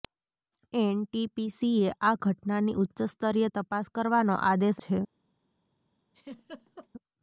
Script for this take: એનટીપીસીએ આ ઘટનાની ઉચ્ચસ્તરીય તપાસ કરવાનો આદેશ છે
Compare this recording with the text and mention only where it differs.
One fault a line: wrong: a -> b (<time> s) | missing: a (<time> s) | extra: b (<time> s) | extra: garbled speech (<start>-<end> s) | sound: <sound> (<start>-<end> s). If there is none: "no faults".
sound: laugh (6.1-6.9 s)